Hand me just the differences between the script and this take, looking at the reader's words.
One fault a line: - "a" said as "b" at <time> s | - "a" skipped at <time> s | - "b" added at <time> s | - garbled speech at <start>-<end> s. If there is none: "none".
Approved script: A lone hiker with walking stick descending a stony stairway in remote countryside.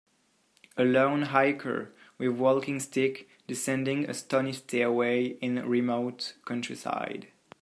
none